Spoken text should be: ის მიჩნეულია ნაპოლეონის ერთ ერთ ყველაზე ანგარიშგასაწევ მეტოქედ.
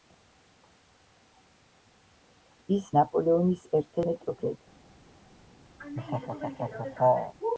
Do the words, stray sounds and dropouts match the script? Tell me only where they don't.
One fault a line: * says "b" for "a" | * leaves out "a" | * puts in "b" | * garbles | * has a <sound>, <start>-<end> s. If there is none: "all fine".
* leaves out "მიჩნეულია"
* leaves out "ერთ ყველაზე ანგარიშგასაწევ"
* has a laugh, 5.8-7.3 s